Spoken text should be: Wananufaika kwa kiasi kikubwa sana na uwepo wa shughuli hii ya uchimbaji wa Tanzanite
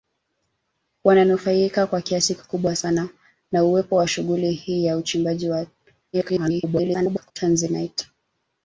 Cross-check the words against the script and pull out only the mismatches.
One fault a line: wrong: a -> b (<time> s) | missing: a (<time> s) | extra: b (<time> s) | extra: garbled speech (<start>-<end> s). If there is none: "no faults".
extra: garbled speech (6.1-7.3 s)